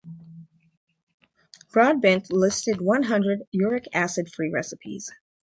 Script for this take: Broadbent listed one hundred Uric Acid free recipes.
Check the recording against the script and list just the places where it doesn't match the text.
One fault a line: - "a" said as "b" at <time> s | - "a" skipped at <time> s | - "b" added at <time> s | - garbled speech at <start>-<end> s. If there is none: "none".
none